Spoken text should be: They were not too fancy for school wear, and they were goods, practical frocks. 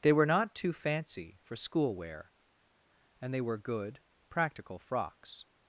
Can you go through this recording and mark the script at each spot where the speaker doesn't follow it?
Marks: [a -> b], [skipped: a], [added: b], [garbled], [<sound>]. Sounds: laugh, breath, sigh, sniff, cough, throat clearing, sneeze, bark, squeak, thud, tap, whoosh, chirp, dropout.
They were not too fancy for school wear, and they were [goods, -> good] practical frocks.